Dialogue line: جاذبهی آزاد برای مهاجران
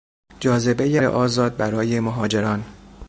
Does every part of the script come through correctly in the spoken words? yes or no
yes